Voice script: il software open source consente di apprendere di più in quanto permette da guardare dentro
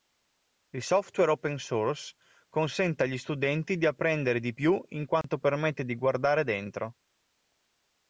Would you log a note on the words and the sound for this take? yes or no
yes